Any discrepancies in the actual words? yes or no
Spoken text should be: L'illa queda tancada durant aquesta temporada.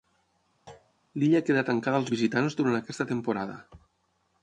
yes